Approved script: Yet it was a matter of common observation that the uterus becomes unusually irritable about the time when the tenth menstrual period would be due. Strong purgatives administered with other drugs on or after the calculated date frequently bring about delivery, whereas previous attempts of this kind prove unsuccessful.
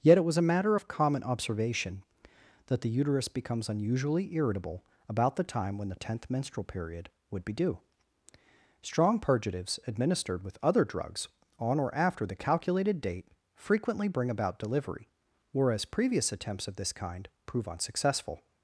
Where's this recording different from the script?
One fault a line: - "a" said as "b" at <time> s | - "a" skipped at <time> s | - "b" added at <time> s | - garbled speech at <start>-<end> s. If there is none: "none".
none